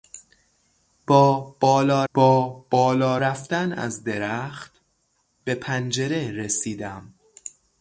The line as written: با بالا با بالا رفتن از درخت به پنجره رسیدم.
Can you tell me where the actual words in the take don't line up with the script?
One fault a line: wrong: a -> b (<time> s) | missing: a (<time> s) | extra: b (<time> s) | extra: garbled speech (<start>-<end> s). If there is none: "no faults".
no faults